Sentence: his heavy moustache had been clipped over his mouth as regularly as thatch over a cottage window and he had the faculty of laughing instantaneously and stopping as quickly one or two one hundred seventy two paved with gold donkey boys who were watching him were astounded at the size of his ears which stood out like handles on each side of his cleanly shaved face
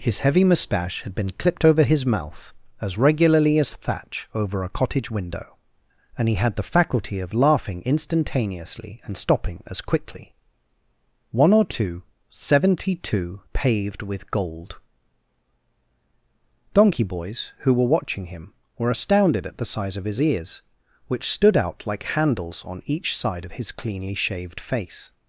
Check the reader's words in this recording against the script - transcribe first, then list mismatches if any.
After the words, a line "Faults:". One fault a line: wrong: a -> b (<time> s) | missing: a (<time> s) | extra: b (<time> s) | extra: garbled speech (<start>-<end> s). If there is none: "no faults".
his heavy moustache had been clipped over his mouth as regularly as thatch over a cottage window and he had the faculty of laughing instantaneously and stopping as quickly one or two seventy two paved with gold donkey boys who were watching him were astounded at the size of his ears which stood out like handles on each side of his cleanly shaved face
Faults:
missing: one hundred (12.0 s)